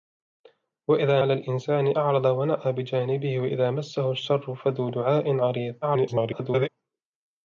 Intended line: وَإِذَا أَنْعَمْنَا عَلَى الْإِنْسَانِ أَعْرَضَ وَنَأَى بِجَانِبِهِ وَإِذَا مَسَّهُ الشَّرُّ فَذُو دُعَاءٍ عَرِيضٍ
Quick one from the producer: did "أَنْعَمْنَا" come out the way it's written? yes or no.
no